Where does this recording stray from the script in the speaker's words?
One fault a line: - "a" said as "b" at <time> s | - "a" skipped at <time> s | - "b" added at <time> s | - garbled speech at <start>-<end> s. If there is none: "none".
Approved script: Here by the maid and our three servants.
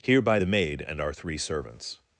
none